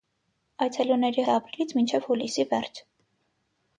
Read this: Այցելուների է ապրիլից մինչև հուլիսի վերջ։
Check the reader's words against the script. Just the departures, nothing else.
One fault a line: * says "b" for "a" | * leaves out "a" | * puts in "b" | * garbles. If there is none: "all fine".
all fine